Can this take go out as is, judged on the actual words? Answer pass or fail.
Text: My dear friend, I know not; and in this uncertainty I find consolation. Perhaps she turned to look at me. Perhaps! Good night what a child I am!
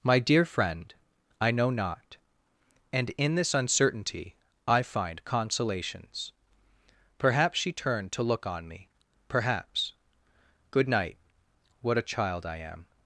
fail